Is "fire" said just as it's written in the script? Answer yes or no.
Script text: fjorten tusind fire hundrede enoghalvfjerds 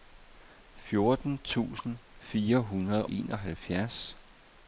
yes